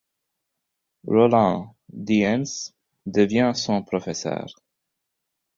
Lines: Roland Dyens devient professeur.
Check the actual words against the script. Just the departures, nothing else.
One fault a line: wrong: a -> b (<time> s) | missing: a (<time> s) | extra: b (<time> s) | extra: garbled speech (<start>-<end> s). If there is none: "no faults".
extra: son (3.5 s)